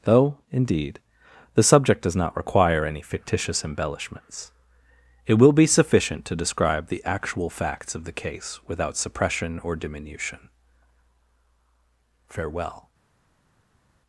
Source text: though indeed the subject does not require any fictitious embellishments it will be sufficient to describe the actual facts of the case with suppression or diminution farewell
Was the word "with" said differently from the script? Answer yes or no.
yes